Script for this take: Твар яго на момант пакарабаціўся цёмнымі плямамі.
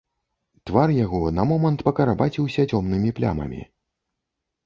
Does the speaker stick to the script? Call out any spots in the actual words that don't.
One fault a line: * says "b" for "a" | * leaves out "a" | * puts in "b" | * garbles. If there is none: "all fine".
all fine